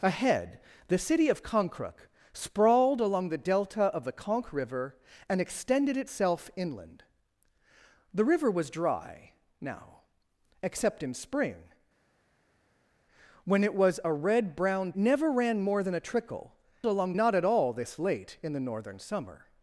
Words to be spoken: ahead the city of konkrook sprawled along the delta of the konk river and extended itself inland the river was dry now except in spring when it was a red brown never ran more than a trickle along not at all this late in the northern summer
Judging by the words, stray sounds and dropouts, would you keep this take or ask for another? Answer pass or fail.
pass